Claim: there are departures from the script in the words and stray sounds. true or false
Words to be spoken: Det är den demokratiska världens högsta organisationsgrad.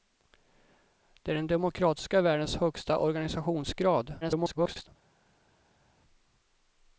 true